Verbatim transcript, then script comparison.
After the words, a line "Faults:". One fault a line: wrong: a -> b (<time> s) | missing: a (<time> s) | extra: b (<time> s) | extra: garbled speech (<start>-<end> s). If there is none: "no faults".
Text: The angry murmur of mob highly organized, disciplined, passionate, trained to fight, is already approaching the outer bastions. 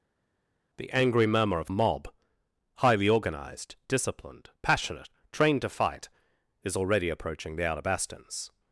The angry murmur of mob highly organized, disciplined, passionate, trained to fight, is already approaching the outer bastions.
Faults:
no faults